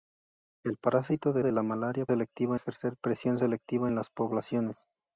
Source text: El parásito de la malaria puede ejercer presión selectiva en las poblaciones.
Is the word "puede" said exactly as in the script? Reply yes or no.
no